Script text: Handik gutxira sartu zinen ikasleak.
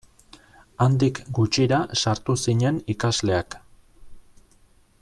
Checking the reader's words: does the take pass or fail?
pass